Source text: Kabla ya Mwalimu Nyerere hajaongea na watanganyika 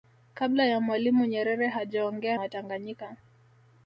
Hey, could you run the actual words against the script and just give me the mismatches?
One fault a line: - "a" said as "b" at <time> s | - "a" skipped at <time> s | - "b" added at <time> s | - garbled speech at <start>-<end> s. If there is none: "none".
- "na" skipped at 2.4 s